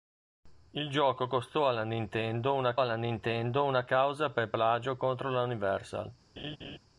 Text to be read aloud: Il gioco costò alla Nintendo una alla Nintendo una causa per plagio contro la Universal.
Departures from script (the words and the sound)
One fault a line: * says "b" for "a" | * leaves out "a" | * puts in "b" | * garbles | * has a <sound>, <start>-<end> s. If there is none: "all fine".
* has a laugh, 6.4-6.8 s